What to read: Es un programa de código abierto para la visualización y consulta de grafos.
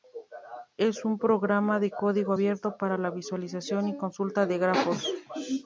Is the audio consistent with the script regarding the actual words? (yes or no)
yes